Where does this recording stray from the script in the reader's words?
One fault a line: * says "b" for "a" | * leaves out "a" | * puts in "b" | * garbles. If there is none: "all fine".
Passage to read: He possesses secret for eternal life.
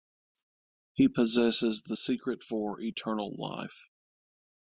* puts in "the"